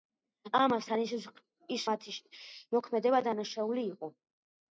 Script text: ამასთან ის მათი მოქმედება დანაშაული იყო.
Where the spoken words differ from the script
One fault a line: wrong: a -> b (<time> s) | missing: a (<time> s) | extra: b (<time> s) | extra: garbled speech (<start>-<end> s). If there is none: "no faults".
no faults